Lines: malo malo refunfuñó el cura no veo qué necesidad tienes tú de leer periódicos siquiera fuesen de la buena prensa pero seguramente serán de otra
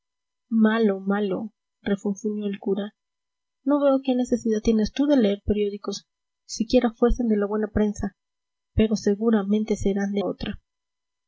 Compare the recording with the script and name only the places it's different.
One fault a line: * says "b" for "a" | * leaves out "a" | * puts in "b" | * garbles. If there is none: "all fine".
all fine